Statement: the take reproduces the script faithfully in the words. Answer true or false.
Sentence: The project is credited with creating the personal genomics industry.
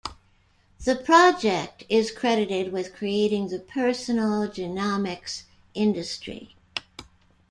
true